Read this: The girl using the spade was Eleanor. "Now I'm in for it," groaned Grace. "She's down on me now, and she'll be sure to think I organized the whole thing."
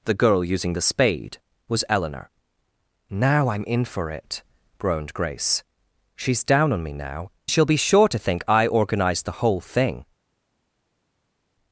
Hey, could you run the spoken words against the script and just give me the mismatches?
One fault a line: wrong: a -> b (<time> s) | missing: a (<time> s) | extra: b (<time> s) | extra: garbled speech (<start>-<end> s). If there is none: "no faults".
missing: and (7.3 s)